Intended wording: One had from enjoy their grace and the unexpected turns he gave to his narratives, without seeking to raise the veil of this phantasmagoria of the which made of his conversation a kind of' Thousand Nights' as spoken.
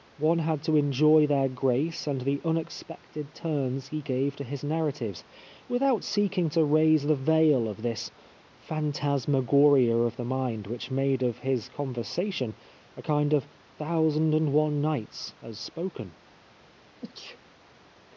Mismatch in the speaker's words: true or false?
true